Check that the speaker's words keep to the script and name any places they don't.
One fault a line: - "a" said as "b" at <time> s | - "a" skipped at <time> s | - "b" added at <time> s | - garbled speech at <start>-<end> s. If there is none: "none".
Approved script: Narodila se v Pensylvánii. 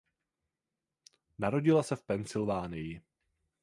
none